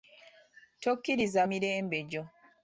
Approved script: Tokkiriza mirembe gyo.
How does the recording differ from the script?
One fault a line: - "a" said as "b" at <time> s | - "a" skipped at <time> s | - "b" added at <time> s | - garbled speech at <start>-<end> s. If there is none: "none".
none